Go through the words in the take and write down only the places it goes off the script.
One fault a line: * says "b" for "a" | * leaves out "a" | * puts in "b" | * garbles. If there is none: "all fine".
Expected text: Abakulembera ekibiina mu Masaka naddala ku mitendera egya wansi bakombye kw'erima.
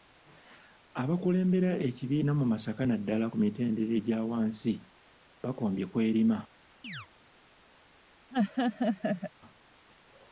all fine